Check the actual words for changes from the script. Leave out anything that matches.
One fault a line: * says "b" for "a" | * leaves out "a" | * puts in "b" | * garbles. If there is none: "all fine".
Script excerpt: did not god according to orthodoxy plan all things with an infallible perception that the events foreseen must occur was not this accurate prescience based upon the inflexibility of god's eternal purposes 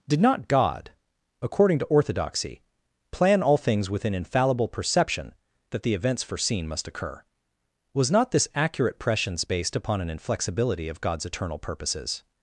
* says "an" for "the"